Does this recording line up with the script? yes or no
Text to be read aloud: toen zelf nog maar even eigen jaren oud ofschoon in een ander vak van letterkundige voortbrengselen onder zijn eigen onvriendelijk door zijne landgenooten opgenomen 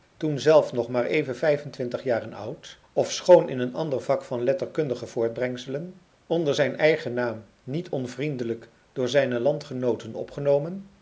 no